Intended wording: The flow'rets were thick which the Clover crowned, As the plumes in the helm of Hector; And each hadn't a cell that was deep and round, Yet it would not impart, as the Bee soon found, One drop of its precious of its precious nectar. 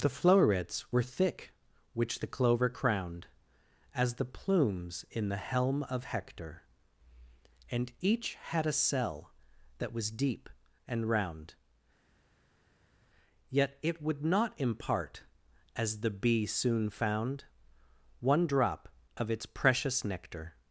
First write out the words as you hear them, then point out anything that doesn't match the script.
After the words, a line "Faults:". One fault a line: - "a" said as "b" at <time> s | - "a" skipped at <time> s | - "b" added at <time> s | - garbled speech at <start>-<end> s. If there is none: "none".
The flow'rets were thick which the Clover crowned, As the plumes in the helm of Hector; And each had a cell that was deep and round, Yet it would not impart, as the Bee soon found, One drop of its precious nectar.
Faults:
- "hadn't" said as "had" at 8.3 s
- "of its precious" skipped at 20.0 s